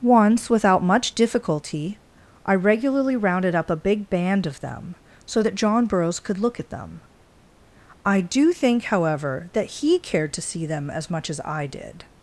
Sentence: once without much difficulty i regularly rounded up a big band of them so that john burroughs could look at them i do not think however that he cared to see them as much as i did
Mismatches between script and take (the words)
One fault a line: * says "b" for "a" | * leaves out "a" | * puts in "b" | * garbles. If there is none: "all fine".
* leaves out "not"